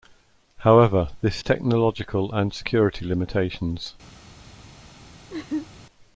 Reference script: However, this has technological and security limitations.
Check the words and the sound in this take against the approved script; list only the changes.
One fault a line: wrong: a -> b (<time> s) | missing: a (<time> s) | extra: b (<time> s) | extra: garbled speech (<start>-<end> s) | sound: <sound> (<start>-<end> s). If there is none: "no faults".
missing: has (1.4 s)
sound: laugh (5.3-5.7 s)